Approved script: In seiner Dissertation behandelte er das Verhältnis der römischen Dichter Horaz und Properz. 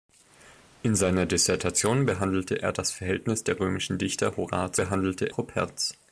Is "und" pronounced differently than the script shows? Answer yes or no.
yes